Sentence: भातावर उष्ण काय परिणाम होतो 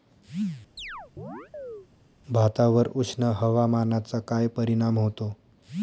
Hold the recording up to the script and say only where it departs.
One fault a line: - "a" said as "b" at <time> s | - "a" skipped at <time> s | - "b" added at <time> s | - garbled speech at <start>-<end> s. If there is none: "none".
- "हवामानाचा" added at 3.4 s